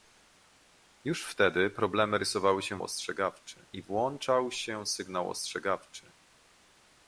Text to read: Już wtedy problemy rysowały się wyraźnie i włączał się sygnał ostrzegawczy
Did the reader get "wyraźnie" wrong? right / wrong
wrong